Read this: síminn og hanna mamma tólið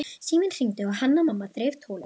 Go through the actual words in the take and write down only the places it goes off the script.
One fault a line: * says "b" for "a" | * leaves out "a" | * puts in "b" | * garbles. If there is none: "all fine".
* puts in "hringdi"
* puts in "þreif"